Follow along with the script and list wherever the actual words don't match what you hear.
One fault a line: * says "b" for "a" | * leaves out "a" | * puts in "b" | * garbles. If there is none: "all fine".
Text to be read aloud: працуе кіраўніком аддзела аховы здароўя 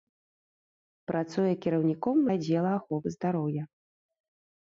all fine